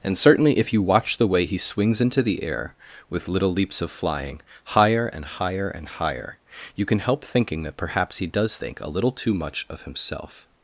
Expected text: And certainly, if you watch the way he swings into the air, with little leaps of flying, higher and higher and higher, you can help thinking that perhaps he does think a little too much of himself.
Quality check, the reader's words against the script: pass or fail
pass